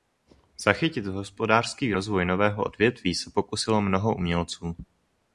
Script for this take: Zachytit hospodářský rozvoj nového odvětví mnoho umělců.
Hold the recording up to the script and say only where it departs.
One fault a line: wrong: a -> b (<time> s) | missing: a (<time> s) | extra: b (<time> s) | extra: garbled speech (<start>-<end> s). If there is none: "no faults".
extra: se pokusilo (3.2 s)